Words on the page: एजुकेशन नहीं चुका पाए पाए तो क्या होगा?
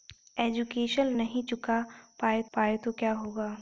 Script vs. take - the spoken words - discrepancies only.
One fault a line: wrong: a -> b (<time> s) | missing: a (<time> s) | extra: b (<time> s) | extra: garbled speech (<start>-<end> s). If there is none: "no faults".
no faults